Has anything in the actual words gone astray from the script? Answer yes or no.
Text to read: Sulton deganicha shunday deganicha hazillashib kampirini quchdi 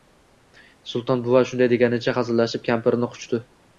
yes